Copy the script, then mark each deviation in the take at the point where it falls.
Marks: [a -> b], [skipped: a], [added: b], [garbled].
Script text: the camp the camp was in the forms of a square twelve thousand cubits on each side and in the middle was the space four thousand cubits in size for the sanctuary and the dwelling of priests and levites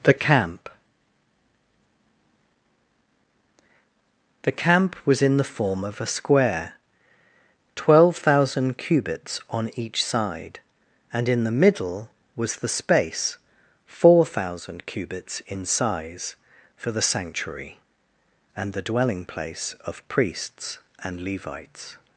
the camp the camp was in the [forms -> form] of a square twelve thousand cubits on each side and in the middle was the space four thousand cubits in size for the sanctuary and the dwelling [added: place] of priests and levites